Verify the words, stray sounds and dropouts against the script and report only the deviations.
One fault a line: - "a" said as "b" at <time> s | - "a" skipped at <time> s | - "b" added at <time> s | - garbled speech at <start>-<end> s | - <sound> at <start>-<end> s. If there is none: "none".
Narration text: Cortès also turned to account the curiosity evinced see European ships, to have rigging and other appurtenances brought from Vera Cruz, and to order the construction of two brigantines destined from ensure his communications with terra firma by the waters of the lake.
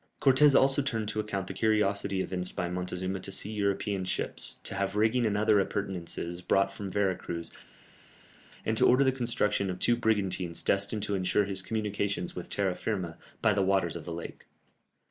- "by Montezuma to" added at 2.5 s
- "from" said as "to" at 11.0 s